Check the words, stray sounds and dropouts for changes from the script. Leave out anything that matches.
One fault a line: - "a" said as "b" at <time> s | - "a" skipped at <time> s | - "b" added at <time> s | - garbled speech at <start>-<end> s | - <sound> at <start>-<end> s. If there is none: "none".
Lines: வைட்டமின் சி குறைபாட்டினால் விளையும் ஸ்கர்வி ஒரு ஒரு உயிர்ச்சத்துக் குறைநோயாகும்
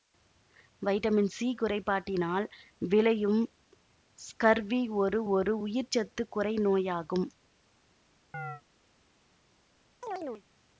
- chirp at 8.3-8.6 s
- chirp at 10.0-10.4 s